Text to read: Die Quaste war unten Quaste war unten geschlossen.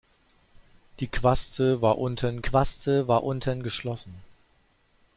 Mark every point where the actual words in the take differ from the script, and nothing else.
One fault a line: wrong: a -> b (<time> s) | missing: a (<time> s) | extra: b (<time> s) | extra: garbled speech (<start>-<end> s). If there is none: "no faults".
no faults